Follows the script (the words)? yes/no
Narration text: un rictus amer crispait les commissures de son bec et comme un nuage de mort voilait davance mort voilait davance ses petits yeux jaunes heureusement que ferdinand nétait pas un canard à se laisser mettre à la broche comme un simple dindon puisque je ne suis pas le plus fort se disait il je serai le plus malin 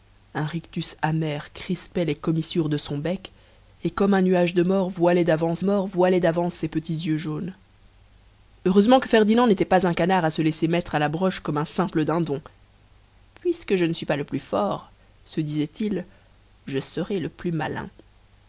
yes